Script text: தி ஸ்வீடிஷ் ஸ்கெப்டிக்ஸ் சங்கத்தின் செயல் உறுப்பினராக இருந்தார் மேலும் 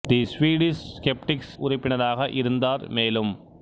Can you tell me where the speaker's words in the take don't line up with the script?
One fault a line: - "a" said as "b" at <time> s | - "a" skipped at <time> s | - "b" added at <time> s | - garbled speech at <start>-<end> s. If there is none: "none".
- "சங்கத்தின் செயல்" skipped at 1.5 s